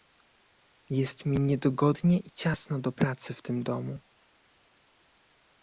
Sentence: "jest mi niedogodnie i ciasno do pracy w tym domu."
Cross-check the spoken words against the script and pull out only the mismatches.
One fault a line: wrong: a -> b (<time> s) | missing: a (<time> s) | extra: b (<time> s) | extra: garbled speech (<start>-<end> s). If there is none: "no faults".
no faults